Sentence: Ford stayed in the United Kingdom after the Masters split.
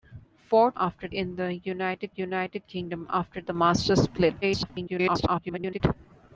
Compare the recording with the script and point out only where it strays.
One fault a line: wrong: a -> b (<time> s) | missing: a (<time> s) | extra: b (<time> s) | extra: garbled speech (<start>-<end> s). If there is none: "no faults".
wrong: stayed -> after (0.7 s)
extra: United (2.1 s)
extra: garbled speech (4.4-5.8 s)